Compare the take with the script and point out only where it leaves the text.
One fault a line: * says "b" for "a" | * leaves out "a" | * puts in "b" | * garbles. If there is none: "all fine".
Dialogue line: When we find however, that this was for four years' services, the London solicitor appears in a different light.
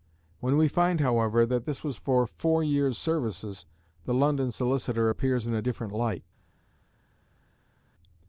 all fine